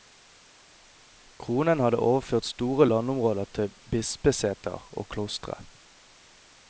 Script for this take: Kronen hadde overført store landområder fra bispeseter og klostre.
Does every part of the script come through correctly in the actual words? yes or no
no